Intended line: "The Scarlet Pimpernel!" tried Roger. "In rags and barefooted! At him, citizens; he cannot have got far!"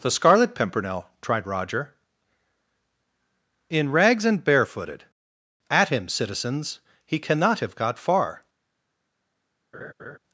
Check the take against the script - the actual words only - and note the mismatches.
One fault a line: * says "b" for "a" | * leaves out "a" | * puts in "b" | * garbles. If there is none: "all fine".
all fine